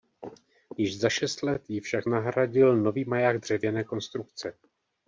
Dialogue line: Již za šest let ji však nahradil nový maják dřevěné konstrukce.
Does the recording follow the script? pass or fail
pass